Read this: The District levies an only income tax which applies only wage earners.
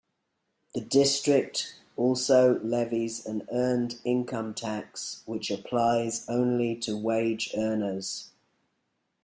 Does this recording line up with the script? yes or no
no